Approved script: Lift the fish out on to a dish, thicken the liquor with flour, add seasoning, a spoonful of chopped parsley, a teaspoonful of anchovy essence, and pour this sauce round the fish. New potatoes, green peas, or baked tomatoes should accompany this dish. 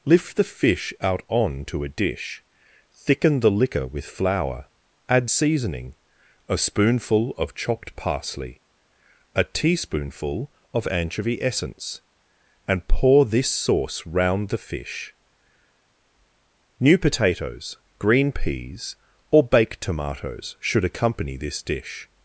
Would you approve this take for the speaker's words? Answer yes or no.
yes